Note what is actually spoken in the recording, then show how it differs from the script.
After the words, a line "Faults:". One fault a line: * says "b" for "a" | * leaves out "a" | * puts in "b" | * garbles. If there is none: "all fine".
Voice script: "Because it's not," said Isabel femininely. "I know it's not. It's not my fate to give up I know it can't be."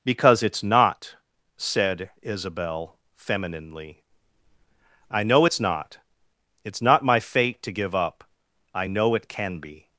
"Because it's not," said Isabel femininely. "I know it's not. It's not my fate to give up I know it can be."
Faults:
* says "can" for "can't"